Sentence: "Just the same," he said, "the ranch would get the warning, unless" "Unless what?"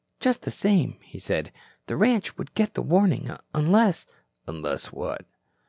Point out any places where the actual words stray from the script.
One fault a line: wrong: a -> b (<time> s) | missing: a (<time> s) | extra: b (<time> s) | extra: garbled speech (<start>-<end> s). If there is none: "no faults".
no faults